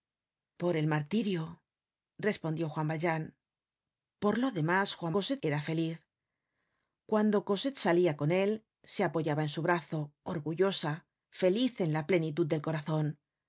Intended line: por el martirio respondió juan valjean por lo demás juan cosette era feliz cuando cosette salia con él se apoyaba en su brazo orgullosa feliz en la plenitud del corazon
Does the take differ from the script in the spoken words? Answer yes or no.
no